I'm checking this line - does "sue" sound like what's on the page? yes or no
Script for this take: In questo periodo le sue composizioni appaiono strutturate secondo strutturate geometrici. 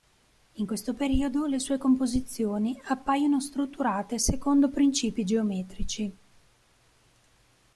yes